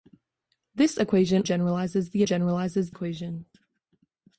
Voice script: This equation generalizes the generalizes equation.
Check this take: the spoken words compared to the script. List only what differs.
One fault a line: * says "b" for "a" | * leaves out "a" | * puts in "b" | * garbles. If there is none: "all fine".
all fine